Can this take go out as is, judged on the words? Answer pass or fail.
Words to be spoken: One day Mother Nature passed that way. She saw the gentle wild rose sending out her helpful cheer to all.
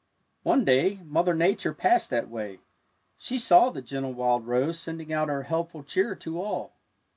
pass